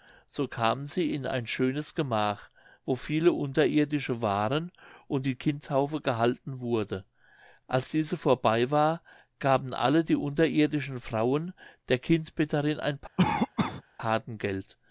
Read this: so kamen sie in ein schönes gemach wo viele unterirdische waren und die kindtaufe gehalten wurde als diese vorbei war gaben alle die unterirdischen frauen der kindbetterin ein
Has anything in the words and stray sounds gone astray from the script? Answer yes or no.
yes